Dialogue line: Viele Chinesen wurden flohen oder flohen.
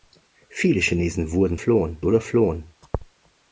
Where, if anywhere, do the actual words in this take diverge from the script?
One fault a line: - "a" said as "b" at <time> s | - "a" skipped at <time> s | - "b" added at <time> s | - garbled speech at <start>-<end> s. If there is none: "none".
none